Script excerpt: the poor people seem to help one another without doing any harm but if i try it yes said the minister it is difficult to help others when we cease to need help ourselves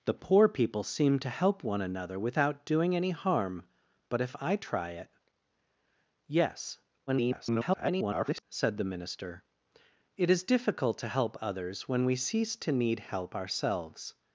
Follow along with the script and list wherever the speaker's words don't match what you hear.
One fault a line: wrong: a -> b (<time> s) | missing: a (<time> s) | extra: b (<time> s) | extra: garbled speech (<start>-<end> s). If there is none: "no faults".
extra: garbled speech (7.1-8.4 s)